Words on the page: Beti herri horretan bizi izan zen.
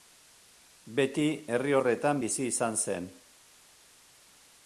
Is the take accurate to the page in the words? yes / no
yes